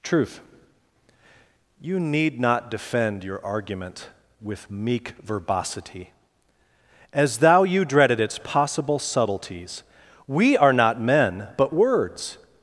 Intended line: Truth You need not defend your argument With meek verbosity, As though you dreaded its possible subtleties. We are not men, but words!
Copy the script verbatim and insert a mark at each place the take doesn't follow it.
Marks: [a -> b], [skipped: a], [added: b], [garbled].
Truth You need not defend your argument With meek verbosity, As [though -> thou] you dreaded its possible subtleties. We are not men, but words!